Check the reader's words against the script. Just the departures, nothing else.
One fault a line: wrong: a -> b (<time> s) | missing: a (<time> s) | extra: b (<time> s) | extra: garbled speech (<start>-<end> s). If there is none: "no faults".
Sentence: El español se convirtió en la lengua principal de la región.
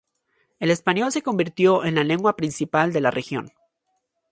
no faults